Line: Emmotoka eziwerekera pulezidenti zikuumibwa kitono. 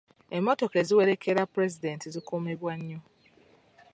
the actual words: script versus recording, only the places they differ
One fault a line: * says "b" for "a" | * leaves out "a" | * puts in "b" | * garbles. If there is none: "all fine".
* says "nnyo" for "kitono"